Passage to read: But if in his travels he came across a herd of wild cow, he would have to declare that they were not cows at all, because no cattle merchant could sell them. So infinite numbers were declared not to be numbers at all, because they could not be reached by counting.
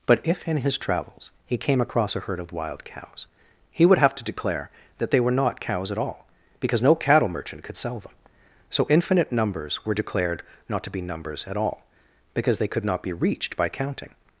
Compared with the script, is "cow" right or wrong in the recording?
wrong